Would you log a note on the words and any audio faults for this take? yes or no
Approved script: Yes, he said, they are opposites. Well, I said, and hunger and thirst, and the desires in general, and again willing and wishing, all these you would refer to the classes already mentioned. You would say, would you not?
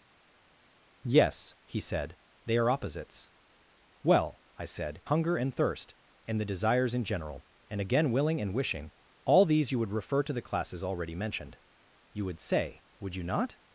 yes